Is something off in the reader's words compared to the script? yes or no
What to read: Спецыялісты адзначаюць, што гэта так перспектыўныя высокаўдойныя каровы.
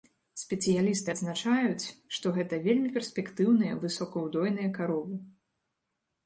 yes